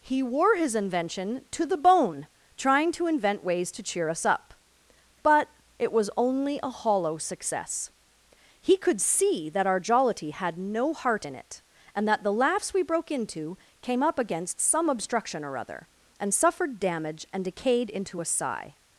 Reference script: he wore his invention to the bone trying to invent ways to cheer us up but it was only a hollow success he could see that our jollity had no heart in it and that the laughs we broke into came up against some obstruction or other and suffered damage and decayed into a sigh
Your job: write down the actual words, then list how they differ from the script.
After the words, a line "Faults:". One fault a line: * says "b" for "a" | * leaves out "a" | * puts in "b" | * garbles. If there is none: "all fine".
he wore his invention to the bone trying to invent ways to cheer us up but it was only a hollow success he could see that our jollity had no heart in it and that the laughs we broke into came up against some obstruction or other and suffered damage and decayed into a sigh
Faults:
all fine